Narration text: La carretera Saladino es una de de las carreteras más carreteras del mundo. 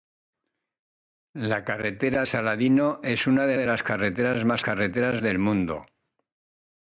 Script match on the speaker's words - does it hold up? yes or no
yes